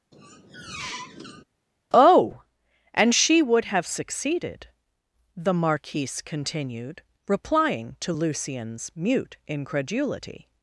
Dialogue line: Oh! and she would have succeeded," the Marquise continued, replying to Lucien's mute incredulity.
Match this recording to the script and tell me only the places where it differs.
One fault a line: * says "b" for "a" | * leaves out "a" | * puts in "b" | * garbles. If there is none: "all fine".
all fine